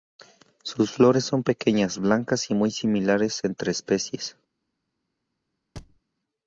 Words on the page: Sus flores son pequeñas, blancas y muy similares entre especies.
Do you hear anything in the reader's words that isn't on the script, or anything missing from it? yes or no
no